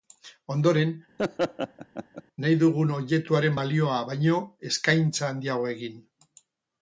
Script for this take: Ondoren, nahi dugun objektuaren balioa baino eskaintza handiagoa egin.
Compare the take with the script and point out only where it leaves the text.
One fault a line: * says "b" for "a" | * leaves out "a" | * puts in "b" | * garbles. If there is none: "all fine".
all fine